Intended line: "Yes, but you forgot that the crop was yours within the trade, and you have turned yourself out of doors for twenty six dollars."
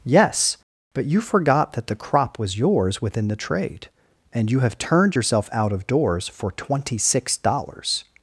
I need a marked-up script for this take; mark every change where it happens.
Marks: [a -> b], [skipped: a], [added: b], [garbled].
"Yes, but you forgot that the crop was yours within the trade, and you have turned yourself out of doors for twenty six dollars."